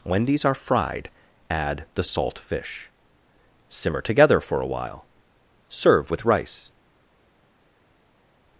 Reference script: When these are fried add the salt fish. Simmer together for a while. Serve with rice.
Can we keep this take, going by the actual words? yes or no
yes